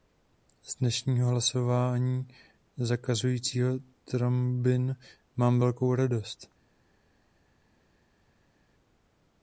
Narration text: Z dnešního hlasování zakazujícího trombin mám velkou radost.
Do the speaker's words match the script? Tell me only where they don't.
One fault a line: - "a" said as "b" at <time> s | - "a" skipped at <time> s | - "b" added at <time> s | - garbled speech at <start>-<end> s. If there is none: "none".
none